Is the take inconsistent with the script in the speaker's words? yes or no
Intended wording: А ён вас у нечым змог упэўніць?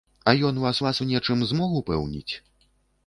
yes